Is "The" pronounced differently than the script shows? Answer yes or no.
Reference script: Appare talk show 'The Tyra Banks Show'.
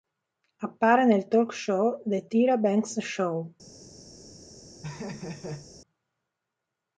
no